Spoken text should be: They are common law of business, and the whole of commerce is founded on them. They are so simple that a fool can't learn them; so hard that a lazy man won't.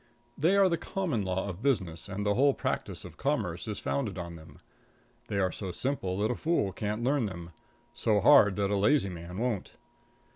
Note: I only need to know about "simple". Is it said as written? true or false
true